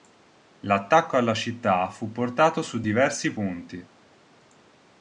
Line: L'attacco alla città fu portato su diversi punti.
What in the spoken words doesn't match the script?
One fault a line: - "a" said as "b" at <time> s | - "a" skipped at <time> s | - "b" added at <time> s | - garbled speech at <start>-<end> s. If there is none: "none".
none